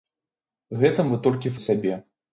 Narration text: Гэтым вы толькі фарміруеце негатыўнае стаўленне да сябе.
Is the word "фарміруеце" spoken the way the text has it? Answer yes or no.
no